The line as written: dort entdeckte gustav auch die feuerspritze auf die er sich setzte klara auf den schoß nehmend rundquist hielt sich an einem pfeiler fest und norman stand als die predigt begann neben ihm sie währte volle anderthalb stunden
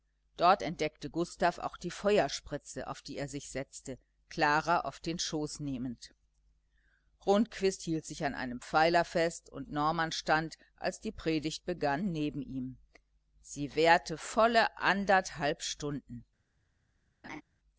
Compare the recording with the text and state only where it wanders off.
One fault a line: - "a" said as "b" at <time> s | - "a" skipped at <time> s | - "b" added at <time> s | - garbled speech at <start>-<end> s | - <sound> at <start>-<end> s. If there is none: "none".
- laugh at 17.2-17.4 s